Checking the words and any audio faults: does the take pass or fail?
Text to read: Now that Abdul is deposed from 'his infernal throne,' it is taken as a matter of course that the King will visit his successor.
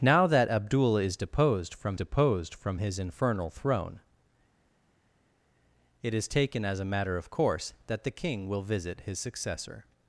fail